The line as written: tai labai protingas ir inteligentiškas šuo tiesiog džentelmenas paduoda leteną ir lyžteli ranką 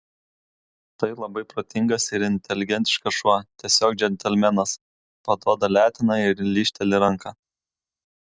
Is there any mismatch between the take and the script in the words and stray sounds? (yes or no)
no